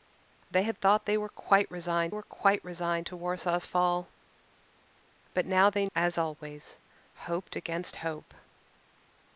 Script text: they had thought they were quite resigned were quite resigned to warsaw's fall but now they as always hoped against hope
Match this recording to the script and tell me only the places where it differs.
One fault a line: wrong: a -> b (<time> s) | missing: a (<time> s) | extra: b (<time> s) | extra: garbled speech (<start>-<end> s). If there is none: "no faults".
no faults